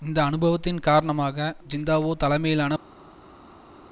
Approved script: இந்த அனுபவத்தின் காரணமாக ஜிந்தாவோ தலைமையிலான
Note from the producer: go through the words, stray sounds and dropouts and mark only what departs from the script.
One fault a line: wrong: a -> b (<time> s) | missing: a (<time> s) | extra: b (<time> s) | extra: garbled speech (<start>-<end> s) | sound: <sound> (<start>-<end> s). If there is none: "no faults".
no faults